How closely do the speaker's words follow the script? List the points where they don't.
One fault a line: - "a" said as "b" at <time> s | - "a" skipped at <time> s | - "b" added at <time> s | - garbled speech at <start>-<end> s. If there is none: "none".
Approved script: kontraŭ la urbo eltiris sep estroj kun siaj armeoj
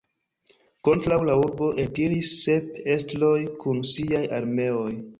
none